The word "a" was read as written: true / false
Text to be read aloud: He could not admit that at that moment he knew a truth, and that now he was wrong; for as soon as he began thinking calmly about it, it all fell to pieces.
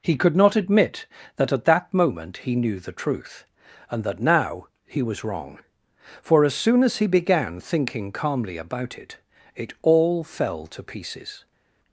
false